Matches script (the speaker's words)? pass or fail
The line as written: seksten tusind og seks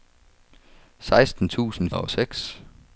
pass